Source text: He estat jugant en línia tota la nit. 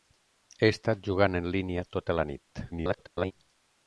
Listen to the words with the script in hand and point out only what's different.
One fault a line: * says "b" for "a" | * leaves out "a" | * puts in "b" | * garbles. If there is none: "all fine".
* garbles